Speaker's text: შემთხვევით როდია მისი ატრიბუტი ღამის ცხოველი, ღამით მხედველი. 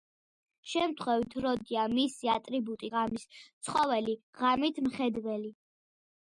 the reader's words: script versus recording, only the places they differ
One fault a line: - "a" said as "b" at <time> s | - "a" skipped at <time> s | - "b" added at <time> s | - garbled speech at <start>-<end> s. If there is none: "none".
none